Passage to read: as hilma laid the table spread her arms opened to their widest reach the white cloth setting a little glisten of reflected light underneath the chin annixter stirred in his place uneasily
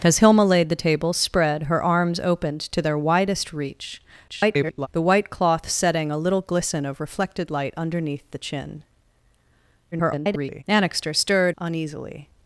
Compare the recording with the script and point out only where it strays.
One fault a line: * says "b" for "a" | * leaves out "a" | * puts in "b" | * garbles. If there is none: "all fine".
* garbles
* garbles
* leaves out "in his place"